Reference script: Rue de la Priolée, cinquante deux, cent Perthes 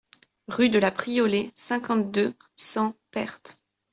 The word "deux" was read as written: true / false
true